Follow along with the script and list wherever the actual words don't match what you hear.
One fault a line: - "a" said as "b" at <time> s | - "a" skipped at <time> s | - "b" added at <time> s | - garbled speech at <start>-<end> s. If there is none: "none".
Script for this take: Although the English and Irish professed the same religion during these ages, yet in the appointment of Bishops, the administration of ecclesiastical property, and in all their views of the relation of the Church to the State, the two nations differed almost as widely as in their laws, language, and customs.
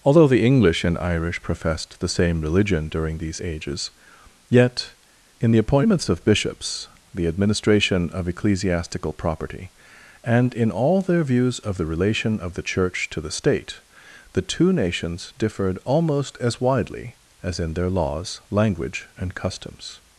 - "appointment" said as "appointments" at 5.6 s